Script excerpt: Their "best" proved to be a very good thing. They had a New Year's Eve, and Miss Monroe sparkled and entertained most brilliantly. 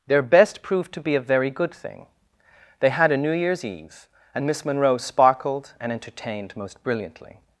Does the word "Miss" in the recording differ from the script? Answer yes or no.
no